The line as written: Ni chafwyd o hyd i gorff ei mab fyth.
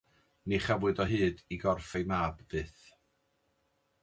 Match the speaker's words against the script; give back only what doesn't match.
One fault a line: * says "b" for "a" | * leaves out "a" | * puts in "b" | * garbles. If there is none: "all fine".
all fine